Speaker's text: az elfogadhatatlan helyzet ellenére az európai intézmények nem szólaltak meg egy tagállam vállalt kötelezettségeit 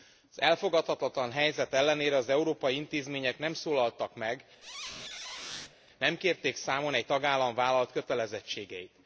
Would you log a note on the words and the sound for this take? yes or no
yes